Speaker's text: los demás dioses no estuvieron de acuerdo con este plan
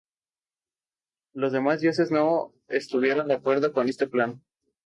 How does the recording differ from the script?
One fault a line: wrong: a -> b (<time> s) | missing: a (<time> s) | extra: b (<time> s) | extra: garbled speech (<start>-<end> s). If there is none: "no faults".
no faults